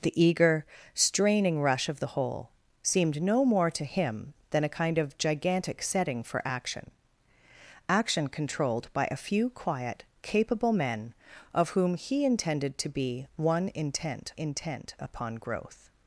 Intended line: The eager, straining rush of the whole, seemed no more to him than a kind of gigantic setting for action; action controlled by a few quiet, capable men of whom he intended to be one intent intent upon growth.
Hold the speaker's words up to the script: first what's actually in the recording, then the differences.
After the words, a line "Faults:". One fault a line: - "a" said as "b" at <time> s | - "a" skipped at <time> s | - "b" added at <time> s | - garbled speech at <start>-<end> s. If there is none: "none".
The eager, straining rush of the whole, seemed no more to him than a kind of gigantic setting for action; action controlled by a few quiet, capable men of whom he intended to be one intent intent upon growth.
Faults:
none